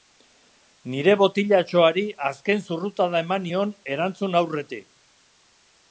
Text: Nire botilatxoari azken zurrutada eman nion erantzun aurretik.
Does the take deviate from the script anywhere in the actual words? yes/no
no